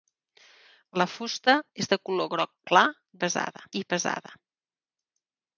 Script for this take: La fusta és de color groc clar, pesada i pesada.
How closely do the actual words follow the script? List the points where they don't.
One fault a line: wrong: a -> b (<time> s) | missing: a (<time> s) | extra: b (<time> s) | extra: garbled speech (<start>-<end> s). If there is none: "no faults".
no faults